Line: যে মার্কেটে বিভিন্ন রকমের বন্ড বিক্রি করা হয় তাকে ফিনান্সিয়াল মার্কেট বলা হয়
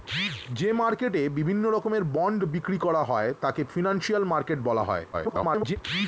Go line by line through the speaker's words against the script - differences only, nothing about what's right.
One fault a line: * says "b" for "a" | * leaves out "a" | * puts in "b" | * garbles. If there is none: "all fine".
* garbles